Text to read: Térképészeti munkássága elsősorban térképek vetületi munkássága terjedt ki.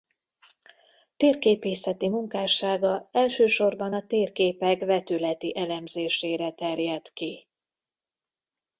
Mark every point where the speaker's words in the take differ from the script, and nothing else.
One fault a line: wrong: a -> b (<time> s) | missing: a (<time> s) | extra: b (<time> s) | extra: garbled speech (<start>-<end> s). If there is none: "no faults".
extra: a (3.9 s)
wrong: munkássága -> elemzésére (5.6 s)